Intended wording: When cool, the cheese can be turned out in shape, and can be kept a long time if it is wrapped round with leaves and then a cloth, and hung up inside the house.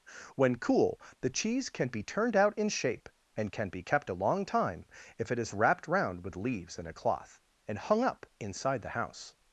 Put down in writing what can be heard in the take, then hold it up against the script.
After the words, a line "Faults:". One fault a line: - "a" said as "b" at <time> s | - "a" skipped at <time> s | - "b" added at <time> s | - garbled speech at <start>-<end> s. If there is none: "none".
When cool, the cheese can be turned out in shape, and can be kept a long time if it is wrapped round with leaves and a cloth, and hung up inside the house.
Faults:
- "then" skipped at 6.9 s